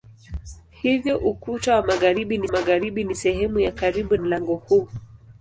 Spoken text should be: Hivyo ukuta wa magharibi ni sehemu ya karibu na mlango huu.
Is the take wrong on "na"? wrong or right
wrong